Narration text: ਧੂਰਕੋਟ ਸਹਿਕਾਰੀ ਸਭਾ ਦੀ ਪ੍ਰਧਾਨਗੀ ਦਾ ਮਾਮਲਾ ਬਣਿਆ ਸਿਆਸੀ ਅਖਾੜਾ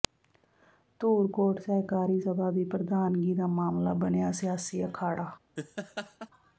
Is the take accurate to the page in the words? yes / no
yes